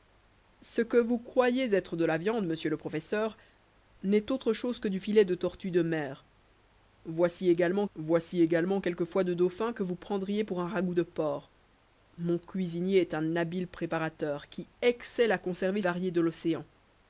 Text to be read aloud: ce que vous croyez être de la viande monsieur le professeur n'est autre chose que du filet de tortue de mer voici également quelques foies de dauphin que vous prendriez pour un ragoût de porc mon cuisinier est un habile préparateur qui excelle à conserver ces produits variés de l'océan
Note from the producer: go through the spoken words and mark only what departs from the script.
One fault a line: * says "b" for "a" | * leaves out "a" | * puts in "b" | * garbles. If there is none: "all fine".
* puts in "voici également"
* leaves out "ces produits"